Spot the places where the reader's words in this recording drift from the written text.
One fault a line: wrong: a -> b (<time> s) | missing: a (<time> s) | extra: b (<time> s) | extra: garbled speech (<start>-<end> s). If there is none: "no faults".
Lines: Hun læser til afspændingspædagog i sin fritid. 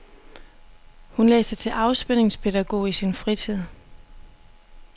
no faults